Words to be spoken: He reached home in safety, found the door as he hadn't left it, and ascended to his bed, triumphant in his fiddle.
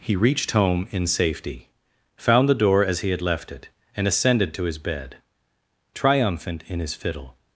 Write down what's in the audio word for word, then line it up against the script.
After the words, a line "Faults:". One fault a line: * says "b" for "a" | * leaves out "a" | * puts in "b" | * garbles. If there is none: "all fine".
He reached home in safety, found the door as he had left it, and ascended to his bed, triumphant in his fiddle.
Faults:
* says "had" for "hadn't"